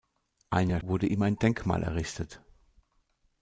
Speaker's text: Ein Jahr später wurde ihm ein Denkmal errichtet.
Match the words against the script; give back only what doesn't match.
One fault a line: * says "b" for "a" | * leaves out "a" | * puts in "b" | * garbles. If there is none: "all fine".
* leaves out "später"